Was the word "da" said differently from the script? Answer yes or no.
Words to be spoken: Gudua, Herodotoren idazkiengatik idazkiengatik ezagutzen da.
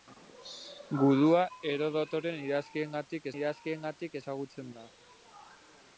no